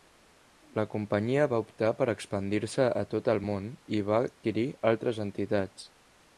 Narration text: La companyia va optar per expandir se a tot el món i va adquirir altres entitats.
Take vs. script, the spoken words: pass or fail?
pass